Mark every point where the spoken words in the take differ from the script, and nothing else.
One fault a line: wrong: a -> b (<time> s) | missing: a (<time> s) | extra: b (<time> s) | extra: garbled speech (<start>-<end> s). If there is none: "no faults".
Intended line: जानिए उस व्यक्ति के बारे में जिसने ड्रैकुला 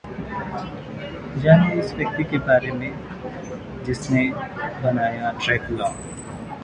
extra: बनाया (4.8 s)